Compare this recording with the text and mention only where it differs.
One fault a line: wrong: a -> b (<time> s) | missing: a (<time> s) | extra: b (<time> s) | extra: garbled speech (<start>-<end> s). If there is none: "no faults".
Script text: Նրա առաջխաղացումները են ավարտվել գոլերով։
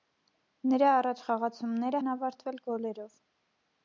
no faults